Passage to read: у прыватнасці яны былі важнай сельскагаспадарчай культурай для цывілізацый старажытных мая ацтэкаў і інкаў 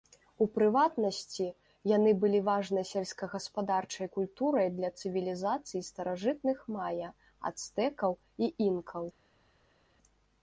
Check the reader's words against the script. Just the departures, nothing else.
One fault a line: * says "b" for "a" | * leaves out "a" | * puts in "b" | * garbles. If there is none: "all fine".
all fine